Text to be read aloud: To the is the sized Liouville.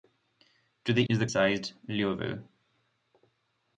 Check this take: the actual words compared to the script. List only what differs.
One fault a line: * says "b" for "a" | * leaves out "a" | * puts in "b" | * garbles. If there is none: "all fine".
all fine